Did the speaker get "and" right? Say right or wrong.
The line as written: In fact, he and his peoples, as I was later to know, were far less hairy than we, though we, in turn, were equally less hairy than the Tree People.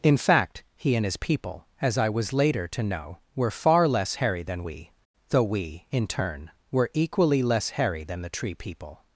right